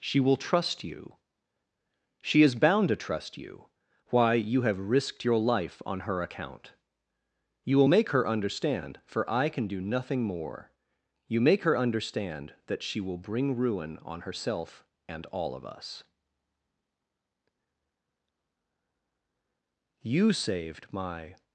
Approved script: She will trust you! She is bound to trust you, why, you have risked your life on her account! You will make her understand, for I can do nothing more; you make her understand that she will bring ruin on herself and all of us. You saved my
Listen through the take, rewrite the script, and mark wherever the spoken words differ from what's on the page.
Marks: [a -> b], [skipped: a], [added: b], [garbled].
She will trust you! She is bound to trust you, why, you have risked your life on her account! You will make her understand, for I can do nothing more; you make her understand that she will bring ruin on herself and all of us. You saved my